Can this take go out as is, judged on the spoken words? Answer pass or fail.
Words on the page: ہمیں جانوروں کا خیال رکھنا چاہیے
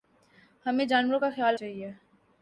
fail